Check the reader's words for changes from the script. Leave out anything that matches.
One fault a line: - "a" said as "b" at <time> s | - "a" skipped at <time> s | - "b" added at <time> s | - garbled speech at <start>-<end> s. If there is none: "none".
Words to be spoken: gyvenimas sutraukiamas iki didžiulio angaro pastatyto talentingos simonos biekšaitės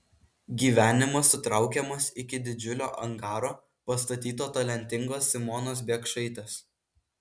none